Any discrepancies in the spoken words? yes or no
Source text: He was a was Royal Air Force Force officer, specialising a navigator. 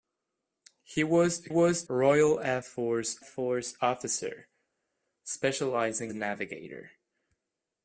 no